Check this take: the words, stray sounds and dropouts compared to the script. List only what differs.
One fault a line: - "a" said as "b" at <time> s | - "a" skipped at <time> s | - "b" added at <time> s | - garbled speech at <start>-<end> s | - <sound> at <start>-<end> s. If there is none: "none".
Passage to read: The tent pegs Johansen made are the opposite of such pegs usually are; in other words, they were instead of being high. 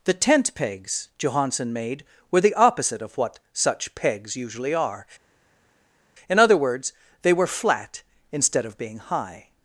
- "are" said as "were" at 2.3 s
- "what" added at 3.2 s
- "flat" added at 7.5 s